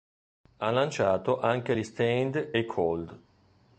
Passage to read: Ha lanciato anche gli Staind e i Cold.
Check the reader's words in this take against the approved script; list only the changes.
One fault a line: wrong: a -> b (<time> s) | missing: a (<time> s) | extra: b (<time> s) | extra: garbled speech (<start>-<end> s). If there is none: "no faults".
no faults